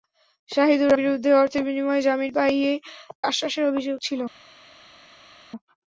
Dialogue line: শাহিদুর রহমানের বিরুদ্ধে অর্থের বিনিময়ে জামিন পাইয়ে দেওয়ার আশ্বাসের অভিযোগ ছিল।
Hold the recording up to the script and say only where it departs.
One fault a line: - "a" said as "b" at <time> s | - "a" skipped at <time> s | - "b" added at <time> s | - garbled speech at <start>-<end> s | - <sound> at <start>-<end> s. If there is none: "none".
- "রহমানের" skipped at 0.9 s
- "দেওয়ার" skipped at 2.7 s